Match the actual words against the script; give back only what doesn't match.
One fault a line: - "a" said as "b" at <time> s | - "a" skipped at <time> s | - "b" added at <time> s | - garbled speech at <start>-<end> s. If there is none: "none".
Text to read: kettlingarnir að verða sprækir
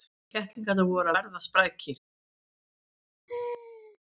- "voru" added at 0.9 s